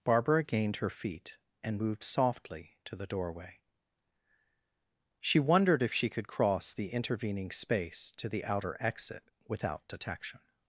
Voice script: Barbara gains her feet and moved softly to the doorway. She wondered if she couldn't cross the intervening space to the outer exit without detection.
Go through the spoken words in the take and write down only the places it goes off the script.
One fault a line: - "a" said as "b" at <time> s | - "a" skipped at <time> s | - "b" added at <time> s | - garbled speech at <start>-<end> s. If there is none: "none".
- "gains" said as "gained" at 0.4 s
- "couldn't" said as "could" at 6.1 s